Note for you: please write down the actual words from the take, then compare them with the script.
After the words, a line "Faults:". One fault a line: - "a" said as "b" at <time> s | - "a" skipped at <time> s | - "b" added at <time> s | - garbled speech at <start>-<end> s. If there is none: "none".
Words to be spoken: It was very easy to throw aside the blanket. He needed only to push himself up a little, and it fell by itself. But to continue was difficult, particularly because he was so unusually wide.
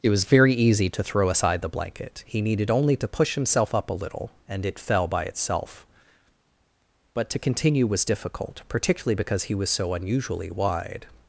It was very easy to throw aside the blanket. He needed only to push himself up a little, and it fell by itself. But to continue was difficult, particularly because he was so unusually wide.
Faults:
none